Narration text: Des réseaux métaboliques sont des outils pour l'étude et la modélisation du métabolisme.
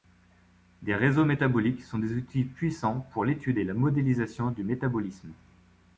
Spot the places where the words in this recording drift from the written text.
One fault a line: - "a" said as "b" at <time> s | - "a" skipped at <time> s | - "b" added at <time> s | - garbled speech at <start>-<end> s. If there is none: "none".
- "puissants" added at 2.4 s